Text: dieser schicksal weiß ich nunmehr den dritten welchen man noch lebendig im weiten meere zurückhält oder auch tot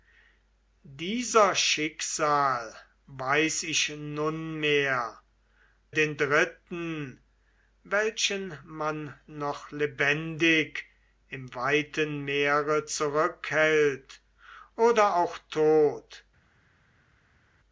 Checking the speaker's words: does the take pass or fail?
pass